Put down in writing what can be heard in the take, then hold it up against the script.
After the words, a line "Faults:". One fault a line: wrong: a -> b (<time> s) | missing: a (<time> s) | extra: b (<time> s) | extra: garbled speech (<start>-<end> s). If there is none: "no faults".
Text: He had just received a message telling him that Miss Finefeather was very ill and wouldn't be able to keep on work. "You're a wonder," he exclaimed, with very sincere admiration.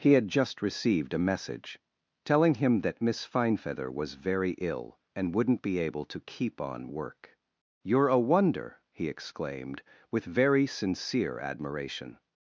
He had just received a message telling him that Miss Finefeather was very ill and wouldn't be able to keep on work. "You're a wonder," he exclaimed, with very sincere admiration.
Faults:
no faults